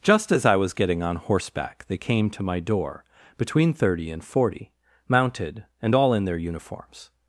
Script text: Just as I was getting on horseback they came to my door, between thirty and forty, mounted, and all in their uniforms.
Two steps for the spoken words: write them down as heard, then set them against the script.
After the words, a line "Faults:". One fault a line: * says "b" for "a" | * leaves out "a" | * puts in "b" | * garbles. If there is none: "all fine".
Just as I was getting on horseback they came to my door, between thirty and forty, mounted, and all in their uniforms.
Faults:
all fine